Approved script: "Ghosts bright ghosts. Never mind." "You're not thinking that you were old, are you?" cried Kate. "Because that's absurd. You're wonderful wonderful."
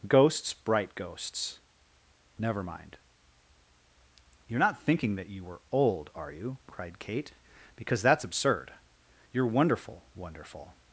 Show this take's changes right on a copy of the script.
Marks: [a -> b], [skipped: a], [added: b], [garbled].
"Ghosts bright ghosts. Never mind." "You're not thinking that you were old, are you?" cried Kate. "Because that's absurd. You're wonderful wonderful."